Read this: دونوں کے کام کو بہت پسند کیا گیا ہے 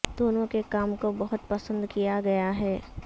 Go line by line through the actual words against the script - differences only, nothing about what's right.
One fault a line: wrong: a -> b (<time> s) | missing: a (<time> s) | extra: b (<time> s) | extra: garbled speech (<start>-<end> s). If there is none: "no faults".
no faults